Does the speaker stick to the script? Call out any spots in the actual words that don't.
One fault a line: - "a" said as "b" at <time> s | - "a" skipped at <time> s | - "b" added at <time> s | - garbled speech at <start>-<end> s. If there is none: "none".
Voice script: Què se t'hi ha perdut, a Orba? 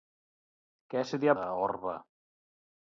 - "perdut" skipped at 1.4 s